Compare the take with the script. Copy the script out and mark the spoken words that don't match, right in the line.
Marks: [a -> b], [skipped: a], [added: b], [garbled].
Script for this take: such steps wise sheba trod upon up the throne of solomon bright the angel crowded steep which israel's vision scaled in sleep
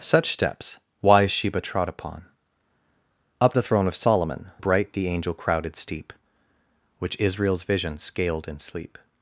such steps wise sheba trod upon up the throne of solomon bright the angel crowded steep which israel's vision scaled in sleep